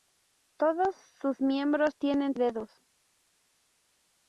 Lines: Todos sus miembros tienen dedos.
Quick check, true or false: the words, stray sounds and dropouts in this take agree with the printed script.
true